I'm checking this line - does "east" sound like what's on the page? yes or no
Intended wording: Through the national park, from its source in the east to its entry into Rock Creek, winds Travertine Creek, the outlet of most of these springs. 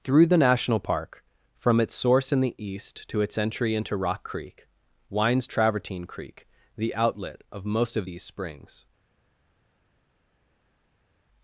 yes